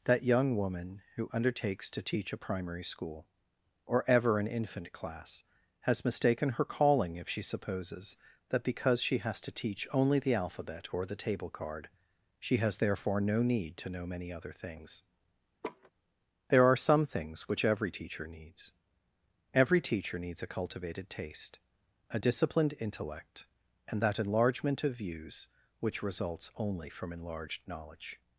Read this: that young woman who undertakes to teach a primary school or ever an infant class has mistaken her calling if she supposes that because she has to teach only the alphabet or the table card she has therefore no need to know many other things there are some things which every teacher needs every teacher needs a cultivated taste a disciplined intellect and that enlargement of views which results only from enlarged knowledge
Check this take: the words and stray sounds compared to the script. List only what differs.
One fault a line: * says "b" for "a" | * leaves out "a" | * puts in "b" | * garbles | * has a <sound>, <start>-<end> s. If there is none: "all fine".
* has a laugh, 15.6-15.9 s